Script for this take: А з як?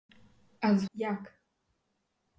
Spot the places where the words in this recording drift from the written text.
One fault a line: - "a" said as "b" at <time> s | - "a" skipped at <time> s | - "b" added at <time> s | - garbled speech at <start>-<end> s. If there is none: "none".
none